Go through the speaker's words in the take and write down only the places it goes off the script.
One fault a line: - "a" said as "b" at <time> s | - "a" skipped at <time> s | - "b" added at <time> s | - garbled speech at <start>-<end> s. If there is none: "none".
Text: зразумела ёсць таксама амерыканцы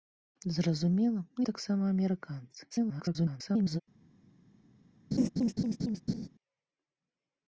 - "ёсць" skipped at 1.2 s
- garbled speech at 2.7-3.8 s